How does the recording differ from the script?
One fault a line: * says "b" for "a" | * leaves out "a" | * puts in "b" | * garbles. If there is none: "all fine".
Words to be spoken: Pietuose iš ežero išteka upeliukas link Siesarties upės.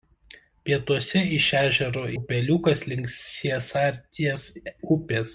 * leaves out "išteka"